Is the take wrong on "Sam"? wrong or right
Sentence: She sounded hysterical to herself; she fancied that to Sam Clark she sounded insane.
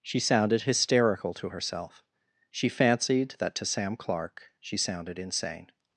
right